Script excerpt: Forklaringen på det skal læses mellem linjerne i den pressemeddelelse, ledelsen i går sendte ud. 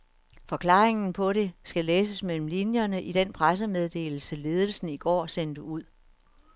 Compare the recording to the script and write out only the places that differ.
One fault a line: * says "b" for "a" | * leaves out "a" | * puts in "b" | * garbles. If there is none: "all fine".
all fine